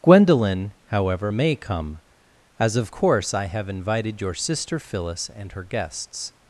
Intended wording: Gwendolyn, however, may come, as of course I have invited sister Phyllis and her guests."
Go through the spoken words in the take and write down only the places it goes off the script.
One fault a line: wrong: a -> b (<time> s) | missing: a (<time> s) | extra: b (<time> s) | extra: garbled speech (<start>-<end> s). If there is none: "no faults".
extra: your (4.2 s)